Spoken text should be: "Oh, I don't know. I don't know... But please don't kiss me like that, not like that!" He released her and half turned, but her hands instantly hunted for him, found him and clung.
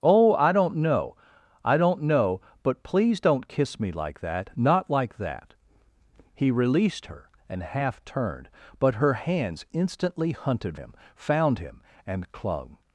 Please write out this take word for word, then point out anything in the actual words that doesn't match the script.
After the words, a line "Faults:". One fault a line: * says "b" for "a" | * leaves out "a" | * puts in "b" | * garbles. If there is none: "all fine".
"Oh, I don't know. I don't know... But please don't kiss me like that, not like that!" He released her and half turned, but her hands instantly hunted him, found him and clung.
Faults:
* leaves out "for"